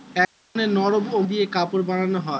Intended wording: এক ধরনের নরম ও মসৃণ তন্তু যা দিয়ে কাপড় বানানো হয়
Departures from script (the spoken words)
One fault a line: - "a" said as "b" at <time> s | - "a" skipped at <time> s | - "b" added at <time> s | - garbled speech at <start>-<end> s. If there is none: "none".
- "মসৃণ তন্তু যা" skipped at 1.2 s